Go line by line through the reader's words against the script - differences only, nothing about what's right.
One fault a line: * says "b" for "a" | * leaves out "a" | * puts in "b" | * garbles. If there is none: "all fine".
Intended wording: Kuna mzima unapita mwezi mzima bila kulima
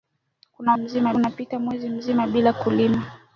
all fine